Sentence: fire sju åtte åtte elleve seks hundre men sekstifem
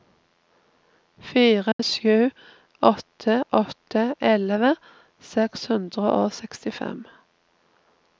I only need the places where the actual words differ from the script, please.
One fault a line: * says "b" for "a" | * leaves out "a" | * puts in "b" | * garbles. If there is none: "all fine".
* says "og" for "men"